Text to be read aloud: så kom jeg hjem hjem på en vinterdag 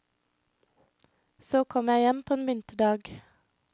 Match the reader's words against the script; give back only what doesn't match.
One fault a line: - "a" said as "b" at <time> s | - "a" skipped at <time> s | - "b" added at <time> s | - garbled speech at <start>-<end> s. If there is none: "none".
- "hjem" skipped at 2.2 s